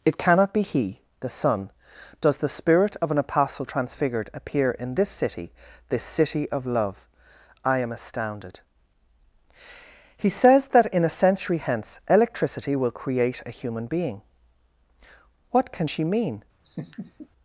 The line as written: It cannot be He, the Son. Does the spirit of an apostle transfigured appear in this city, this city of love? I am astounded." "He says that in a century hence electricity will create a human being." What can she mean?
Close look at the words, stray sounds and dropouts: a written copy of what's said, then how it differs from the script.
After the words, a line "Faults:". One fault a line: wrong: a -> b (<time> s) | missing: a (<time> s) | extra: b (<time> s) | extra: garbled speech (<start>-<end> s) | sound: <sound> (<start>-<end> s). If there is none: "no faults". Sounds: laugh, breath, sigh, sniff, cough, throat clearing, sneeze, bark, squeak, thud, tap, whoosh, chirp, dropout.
It cannot be He, the Son. Does the spirit of an apostle transfigured appear in this city, this city of love? I am astounded." "He says that in a century hence electricity will create a human being." What can she mean?
Faults:
sound: laugh (16.6-17.3 s)